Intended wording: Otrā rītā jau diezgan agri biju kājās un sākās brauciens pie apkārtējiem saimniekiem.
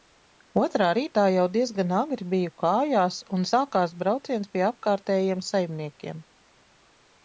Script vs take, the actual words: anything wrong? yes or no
no